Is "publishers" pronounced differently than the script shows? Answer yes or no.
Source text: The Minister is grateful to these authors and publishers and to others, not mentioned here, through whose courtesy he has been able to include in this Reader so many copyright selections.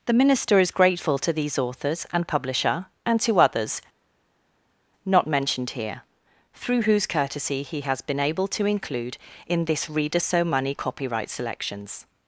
yes